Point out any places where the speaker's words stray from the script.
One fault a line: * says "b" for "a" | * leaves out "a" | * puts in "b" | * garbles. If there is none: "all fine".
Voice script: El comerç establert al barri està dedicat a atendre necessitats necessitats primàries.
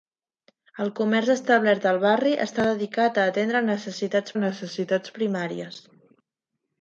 all fine